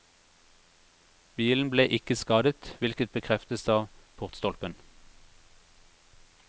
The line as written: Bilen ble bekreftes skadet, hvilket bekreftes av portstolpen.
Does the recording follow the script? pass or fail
fail